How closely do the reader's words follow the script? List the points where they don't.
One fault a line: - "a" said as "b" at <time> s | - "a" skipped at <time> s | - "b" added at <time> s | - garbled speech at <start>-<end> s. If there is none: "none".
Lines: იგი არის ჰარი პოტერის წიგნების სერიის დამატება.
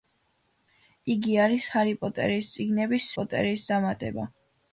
- "სერიის" said as "პოტერის" at 3.2 s